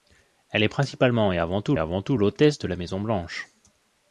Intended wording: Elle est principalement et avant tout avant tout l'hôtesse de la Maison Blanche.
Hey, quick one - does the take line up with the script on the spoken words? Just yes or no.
yes